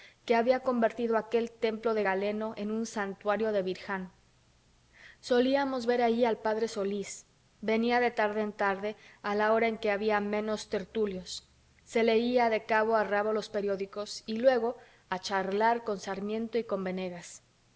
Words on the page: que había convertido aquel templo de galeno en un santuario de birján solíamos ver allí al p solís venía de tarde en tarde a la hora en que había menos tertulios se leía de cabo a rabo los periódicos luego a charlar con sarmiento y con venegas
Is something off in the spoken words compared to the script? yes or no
yes